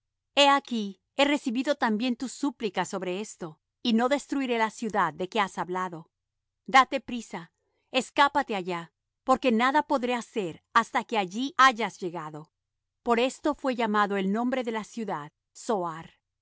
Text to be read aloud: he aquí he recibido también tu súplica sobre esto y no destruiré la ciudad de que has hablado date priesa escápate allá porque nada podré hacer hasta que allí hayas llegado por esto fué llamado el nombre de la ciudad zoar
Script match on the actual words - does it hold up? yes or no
yes